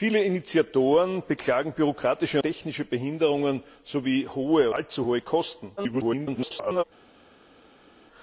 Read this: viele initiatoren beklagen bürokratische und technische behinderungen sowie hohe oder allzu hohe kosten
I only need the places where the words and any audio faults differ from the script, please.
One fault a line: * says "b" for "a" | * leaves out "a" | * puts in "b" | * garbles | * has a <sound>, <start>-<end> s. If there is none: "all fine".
* leaves out "und"
* leaves out "oder"
* garbles